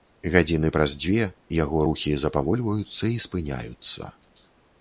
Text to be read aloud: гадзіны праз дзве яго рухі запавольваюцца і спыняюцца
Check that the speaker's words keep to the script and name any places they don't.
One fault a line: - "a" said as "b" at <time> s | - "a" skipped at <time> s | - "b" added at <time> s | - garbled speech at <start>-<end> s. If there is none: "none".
none